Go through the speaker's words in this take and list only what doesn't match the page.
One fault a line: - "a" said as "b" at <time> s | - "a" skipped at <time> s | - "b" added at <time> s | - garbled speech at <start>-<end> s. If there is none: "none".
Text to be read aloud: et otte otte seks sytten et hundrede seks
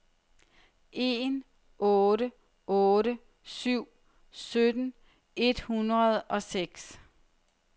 - "et" said as "en" at 0.9 s
- "seks" said as "syv" at 3.4 s
- "og" added at 6.2 s